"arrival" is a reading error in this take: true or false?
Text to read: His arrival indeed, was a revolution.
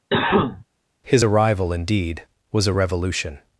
false